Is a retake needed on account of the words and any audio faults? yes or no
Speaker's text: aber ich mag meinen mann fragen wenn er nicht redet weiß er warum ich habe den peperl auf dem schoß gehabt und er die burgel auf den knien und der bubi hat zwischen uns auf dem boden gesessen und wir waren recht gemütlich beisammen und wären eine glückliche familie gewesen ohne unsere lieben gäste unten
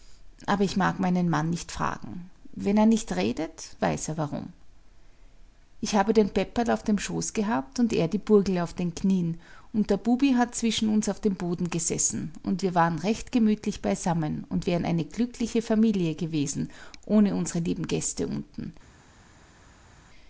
yes